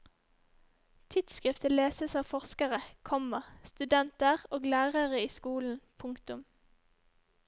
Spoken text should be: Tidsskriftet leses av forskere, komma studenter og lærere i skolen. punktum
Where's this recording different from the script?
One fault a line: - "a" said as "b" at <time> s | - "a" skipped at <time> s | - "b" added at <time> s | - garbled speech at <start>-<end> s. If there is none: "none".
none